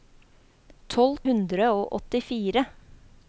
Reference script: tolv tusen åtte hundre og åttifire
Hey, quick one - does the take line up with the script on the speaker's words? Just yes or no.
no